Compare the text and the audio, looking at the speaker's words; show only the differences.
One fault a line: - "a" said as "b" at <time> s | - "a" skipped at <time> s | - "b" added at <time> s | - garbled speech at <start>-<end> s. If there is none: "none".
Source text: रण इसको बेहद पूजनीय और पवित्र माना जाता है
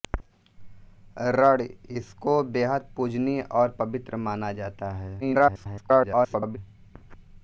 - garbled speech at 5.2-6.6 s